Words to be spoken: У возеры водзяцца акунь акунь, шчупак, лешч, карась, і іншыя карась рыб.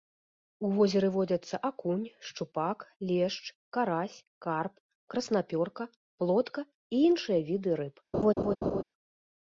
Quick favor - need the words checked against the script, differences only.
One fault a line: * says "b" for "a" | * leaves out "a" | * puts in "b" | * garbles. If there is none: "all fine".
* leaves out "акунь"
* puts in "карп краснапёрка плотка"
* says "віды" for "карась"